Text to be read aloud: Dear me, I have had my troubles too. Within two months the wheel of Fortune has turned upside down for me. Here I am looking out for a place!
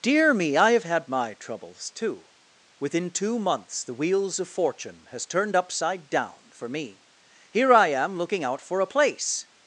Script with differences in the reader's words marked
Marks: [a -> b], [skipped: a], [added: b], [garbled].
Dear me, I have had my troubles too. Within two months the [wheel -> wheels] of Fortune has turned upside down for me. Here I am looking out for a place!